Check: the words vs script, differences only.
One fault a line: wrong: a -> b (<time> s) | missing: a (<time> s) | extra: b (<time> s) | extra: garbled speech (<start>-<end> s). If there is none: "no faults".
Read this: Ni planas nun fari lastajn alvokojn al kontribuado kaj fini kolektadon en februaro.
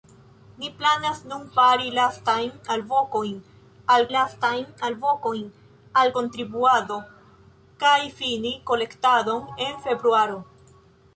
extra: lastajn alvokojn al (4.1 s)